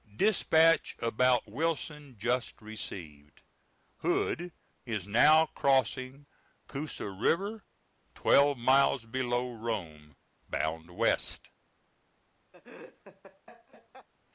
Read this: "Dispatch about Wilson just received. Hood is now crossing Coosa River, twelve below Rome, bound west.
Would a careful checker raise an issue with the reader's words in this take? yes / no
yes